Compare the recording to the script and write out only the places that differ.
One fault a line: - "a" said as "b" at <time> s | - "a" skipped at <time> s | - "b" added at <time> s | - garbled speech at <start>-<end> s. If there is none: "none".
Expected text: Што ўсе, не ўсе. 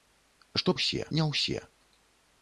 none